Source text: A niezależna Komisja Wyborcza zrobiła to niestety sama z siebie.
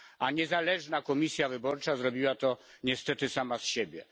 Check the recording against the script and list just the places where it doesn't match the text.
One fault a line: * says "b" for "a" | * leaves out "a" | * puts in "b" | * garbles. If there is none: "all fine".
all fine